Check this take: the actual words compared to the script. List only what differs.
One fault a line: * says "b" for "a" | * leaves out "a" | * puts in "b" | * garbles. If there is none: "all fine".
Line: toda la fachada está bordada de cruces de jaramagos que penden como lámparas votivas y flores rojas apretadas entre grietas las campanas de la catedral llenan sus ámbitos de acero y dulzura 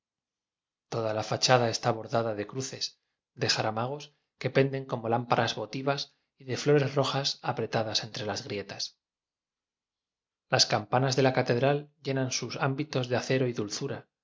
* puts in "de"
* puts in "las"